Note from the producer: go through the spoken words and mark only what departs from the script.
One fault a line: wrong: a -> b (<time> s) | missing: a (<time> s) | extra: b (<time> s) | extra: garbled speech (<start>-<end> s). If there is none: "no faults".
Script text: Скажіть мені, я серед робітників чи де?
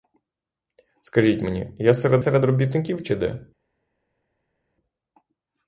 extra: серед (2.2 s)